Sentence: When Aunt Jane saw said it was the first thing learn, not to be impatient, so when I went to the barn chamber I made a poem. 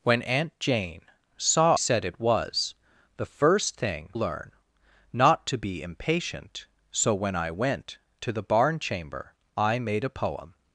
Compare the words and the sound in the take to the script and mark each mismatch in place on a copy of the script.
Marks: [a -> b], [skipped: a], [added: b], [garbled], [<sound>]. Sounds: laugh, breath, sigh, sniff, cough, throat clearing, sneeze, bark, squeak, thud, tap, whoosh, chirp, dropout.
When Aunt Jane saw said it was the first thing learn, not to be impatient, so when I went to the barn chamber I made a poem.